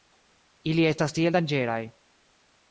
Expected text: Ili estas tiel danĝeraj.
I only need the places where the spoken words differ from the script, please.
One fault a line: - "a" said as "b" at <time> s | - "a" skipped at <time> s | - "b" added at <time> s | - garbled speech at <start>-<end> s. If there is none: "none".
none